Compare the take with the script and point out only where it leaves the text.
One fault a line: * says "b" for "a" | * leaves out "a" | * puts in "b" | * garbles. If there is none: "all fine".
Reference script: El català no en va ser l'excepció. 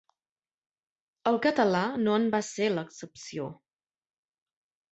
all fine